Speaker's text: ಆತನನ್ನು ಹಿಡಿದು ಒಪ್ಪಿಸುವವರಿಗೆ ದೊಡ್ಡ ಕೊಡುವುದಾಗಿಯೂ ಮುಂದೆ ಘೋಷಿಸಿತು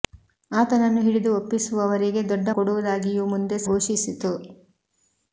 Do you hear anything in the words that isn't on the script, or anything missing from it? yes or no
no